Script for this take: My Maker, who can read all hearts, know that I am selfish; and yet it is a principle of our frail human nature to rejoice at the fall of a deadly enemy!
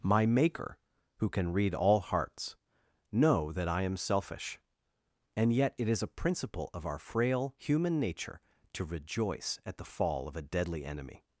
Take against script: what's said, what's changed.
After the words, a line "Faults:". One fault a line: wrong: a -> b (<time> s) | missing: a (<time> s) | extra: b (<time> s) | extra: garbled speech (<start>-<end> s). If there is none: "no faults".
My Maker, who can read all hearts, know that I am selfish; and yet it is a principle of our frail human nature to rejoice at the fall of a deadly enemy!
Faults:
no faults